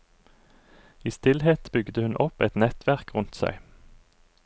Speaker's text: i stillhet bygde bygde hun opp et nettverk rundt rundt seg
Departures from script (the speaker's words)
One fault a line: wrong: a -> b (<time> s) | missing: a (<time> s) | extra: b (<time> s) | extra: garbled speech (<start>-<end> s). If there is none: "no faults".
missing: bygde (2.0 s)
missing: rundt (3.3 s)